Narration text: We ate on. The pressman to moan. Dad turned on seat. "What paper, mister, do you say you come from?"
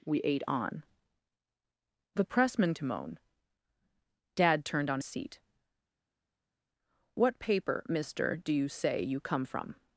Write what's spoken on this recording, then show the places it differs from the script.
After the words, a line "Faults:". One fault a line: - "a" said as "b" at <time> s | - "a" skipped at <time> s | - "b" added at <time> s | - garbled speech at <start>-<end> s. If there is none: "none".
We ate on. The pressman to moan. Dad turned on seat. "What paper, mister, do you say you come from?"
Faults:
none